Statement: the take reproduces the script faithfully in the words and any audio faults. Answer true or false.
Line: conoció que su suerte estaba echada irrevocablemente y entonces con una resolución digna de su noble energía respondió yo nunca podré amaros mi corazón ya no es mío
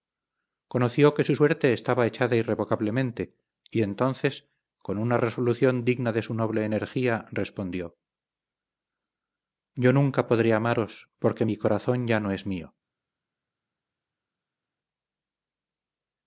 false